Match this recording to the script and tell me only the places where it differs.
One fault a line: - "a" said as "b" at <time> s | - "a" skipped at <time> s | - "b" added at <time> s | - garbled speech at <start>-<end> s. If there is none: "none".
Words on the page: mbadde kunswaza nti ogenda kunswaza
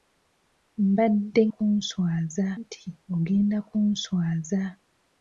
none